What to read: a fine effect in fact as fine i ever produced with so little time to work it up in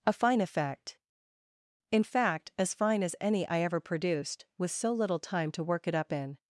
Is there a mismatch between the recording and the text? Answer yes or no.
yes